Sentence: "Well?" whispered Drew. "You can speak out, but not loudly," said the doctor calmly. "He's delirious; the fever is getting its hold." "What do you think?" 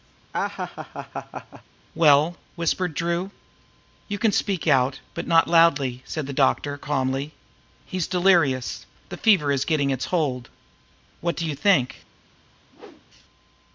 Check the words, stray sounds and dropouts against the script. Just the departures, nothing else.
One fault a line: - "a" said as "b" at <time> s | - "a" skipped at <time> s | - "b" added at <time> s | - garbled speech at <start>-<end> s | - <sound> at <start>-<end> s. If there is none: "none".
- laugh at 0.3-1.6 s
- whoosh at 12.7-13.1 s